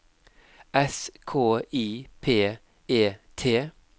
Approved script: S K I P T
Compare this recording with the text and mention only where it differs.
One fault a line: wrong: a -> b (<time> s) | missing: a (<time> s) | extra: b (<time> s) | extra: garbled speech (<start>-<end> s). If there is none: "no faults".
extra: E (2.9 s)